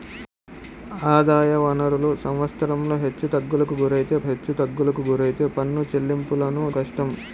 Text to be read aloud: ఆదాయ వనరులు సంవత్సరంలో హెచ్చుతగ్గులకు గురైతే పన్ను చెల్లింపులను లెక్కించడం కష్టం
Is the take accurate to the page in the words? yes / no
no